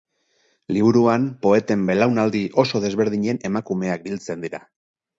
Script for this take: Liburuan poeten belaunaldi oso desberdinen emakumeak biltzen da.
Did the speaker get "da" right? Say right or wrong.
wrong